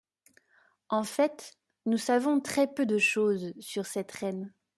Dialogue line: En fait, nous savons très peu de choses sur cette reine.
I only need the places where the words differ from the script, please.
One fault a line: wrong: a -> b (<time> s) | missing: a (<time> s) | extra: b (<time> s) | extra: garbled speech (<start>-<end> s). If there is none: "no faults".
no faults